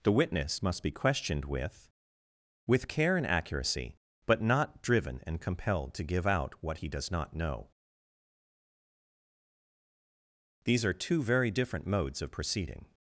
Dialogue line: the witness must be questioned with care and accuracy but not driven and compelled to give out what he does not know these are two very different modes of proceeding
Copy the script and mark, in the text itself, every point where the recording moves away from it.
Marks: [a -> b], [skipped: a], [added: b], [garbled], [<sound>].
the witness must be questioned with [added: with] care and accuracy but not driven and compelled to give out what he does not know these are two very different modes of proceeding